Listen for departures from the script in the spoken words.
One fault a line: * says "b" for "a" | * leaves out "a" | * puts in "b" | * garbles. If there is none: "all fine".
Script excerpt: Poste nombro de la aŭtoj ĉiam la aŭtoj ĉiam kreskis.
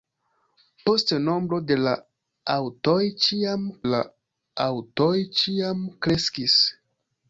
all fine